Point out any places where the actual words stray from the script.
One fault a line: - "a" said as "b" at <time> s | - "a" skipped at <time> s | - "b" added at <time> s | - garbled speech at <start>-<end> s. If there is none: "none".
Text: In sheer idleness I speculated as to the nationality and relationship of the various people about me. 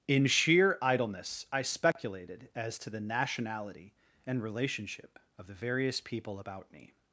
none